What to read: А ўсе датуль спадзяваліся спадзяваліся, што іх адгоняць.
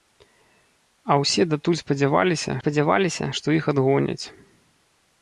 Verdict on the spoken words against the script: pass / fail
pass